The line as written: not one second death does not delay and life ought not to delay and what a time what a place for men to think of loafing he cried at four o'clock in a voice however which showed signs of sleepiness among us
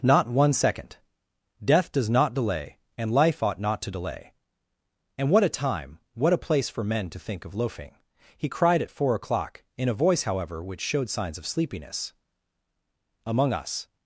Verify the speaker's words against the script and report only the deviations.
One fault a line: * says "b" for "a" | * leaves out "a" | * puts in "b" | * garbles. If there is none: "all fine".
all fine